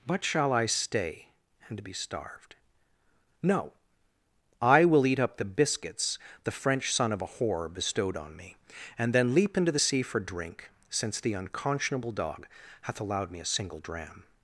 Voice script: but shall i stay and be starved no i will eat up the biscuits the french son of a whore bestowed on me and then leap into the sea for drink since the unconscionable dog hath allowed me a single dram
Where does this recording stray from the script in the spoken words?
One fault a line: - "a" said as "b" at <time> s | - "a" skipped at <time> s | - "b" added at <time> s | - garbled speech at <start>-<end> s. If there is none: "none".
none